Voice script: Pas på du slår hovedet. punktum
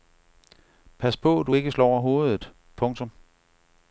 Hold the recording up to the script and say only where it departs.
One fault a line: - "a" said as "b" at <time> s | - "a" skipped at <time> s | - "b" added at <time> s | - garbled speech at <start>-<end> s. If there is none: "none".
- "ikke" added at 1.5 s